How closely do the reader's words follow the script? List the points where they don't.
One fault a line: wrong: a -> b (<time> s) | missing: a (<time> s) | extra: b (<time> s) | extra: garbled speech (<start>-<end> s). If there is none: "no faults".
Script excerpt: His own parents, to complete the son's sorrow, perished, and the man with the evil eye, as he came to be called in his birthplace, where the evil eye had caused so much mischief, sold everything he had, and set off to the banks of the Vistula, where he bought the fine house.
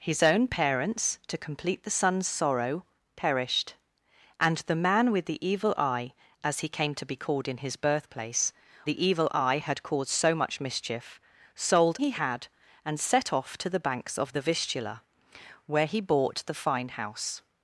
missing: where (8.5 s)
missing: everything (12.0 s)